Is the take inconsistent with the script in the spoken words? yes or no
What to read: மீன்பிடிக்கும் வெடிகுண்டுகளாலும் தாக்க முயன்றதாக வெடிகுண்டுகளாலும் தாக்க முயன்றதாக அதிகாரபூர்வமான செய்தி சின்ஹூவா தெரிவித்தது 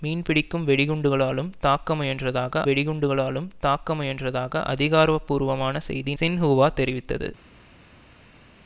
no